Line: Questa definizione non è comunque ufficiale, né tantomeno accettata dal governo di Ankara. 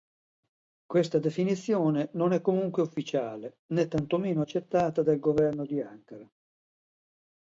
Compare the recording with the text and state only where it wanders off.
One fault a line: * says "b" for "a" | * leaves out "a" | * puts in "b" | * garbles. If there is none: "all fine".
all fine